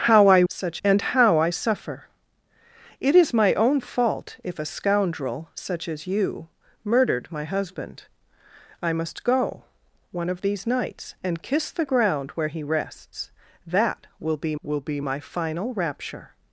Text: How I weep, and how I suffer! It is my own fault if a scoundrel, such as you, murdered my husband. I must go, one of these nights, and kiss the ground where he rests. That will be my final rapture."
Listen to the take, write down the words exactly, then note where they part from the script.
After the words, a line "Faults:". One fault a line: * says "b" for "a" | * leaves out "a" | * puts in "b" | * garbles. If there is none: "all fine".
How I such, and how I suffer! It is my own fault if a scoundrel, such as you, murdered my husband. I must go, one of these nights, and kiss the ground where he rests. That will be will be my final rapture."
Faults:
* says "such" for "weep"
* puts in "will be"